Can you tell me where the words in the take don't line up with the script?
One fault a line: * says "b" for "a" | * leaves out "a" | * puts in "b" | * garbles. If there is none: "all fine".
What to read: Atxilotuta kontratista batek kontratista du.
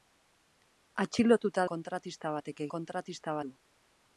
all fine